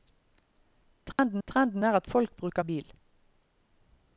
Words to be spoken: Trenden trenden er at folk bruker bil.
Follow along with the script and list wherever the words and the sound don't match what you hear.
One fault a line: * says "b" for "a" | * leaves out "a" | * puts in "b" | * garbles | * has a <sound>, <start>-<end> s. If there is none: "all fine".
* has a dropout, 1.1-1.2 s